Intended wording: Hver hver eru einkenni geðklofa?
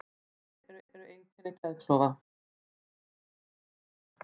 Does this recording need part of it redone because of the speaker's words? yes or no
no